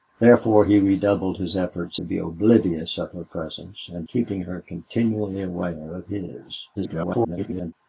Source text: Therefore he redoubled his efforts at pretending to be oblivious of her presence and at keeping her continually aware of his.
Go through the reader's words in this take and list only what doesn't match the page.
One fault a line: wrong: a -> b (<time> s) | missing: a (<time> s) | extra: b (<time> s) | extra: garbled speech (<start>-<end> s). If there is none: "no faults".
missing: at pretending (2.0 s)
missing: at (4.1 s)
extra: garbled speech (6.7-7.7 s)